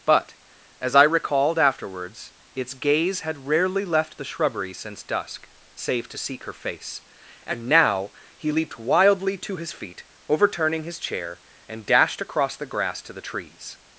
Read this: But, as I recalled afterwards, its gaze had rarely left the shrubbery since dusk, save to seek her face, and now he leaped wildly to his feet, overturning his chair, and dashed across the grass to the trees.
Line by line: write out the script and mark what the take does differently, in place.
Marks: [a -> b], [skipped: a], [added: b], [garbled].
But, as I recalled afterwards, its gaze had rarely left the shrubbery since dusk, save to seek her face, and now he leaped wildly to his feet, overturning his chair, and dashed across the grass to the trees.